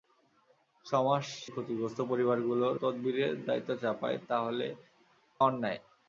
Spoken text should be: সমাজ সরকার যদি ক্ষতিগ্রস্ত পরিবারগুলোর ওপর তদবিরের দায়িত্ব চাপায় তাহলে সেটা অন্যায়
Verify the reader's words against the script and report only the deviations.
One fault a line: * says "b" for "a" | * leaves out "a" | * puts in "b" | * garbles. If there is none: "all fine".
* leaves out "সরকার যদি"
* leaves out "ওপর"
* leaves out "সেটা"